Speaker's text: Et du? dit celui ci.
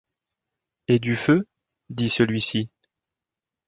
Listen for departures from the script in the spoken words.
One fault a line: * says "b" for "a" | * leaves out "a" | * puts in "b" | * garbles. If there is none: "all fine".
* puts in "feu"